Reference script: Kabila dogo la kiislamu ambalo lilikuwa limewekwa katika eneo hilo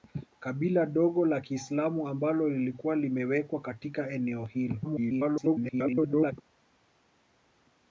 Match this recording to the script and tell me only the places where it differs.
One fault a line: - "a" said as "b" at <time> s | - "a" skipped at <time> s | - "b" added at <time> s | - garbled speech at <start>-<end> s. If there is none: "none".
- garbled speech at 4.8-6.3 s